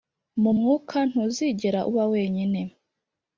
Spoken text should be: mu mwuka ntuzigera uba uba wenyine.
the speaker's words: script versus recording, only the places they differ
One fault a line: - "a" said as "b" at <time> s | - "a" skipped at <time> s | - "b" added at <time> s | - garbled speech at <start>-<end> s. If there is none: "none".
- "uba" skipped at 2.0 s